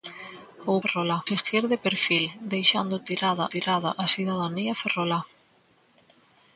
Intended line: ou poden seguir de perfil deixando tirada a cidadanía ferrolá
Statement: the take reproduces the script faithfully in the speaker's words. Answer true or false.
false